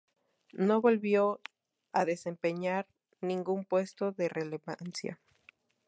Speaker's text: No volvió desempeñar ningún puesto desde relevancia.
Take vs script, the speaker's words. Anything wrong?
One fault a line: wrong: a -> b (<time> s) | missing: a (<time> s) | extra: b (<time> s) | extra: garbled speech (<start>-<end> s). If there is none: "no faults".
extra: a (1.9 s)
wrong: desde -> de (4.1 s)